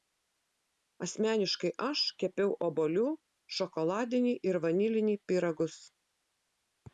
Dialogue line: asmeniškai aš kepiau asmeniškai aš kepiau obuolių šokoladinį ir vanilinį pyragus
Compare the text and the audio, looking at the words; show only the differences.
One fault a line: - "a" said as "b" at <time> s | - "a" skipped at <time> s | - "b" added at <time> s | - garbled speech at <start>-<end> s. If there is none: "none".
- "asmeniškai aš kepiau" skipped at 2.5 s